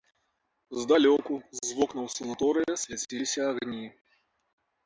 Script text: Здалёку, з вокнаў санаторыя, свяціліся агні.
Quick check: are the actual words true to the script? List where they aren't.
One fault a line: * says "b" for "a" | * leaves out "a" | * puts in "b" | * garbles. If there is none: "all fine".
all fine